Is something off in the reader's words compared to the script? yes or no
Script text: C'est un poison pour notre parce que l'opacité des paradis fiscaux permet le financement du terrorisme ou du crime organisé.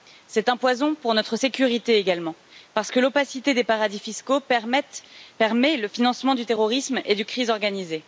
yes